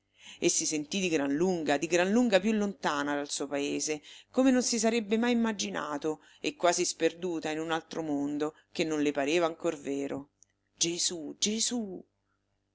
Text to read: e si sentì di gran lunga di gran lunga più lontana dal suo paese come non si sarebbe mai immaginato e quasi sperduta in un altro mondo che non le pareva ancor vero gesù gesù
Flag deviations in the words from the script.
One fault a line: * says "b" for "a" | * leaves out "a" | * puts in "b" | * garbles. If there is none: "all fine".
all fine